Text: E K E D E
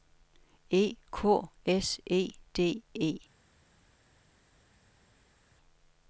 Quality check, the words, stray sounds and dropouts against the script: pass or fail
fail